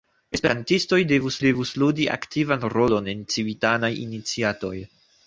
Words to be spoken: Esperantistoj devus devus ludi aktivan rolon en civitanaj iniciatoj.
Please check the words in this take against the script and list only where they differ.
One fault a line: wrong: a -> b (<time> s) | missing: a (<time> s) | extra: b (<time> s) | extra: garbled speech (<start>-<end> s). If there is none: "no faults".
no faults